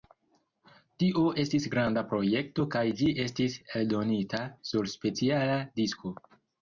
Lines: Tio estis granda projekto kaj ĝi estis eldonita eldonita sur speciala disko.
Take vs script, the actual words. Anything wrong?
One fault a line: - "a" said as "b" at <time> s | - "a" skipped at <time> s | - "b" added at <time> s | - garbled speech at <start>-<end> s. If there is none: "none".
- "eldonita" skipped at 4.4 s